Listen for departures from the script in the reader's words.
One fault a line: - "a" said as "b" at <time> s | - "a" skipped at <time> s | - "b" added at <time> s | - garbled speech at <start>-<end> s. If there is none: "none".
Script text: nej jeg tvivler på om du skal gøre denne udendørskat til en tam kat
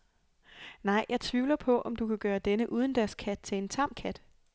- "skal" said as "kan" at 2.1 s